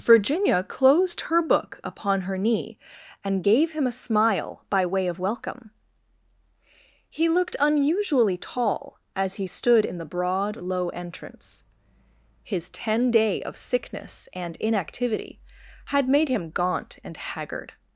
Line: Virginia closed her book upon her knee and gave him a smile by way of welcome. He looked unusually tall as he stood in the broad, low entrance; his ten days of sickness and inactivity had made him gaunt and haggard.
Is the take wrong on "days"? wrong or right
wrong